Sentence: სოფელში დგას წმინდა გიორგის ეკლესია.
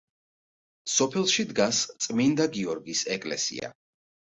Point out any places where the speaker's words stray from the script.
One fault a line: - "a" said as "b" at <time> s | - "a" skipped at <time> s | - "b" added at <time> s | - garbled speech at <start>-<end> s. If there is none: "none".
none